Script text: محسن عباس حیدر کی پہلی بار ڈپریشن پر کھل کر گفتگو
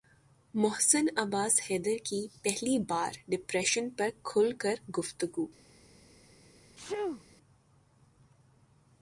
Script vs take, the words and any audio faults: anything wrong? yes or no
yes